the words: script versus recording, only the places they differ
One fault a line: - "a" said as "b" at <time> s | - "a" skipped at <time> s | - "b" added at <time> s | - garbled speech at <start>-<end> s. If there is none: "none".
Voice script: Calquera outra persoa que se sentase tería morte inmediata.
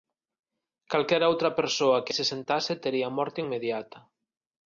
none